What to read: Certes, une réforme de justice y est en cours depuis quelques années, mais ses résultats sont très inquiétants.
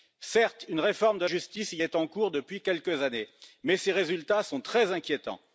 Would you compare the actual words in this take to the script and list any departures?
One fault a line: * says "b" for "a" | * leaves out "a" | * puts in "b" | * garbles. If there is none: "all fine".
all fine